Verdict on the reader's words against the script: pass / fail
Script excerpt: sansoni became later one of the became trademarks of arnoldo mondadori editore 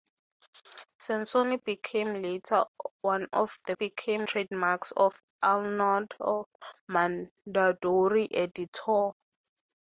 pass